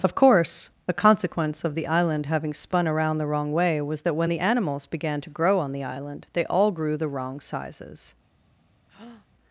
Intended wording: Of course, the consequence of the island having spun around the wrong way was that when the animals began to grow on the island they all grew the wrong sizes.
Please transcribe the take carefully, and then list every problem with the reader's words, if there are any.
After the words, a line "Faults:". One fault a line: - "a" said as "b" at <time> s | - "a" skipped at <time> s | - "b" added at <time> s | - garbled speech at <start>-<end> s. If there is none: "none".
Of course, a consequence of the island having spun around the wrong way was that when the animals began to grow on the island they all grew the wrong sizes.
Faults:
- "the" said as "a" at 0.9 s